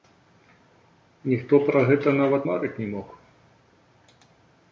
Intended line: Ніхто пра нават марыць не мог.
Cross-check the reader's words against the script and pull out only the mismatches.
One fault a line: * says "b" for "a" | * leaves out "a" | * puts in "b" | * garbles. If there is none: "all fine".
* puts in "гэта"